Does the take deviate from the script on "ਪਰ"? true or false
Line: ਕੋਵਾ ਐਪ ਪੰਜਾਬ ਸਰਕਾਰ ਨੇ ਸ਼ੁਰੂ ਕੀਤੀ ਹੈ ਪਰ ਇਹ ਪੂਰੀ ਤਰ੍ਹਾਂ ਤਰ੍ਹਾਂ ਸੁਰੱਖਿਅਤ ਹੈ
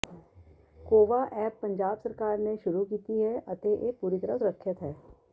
true